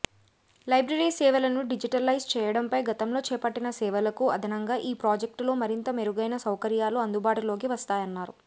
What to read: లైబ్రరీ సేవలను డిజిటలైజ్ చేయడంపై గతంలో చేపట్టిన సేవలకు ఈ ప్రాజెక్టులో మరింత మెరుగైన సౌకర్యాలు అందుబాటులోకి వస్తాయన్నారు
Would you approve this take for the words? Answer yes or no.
no